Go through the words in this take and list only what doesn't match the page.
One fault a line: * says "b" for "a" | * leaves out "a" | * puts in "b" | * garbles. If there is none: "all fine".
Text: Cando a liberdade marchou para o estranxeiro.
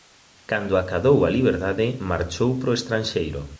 * puts in "acadou"